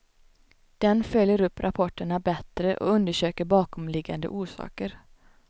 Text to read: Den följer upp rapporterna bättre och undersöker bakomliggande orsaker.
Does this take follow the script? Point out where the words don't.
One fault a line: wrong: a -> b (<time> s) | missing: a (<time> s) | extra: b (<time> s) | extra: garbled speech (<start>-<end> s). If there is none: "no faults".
no faults